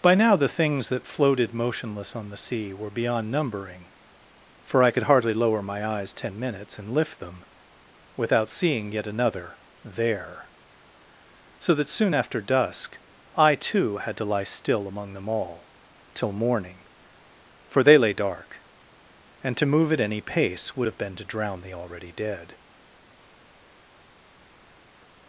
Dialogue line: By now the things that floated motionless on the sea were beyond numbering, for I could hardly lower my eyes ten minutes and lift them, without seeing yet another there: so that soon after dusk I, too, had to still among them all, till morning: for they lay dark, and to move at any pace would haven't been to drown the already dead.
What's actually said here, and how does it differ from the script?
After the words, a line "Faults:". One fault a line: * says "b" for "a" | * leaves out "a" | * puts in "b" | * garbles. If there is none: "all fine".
By now the things that floated motionless on the sea were beyond numbering, for I could hardly lower my eyes ten minutes and lift them, without seeing yet another there: so that soon after dusk I, too, had to lie still among them all, till morning: for they lay dark, and to move at any pace would have been to drown the already dead.
Faults:
* puts in "lie"
* says "have" for "haven't"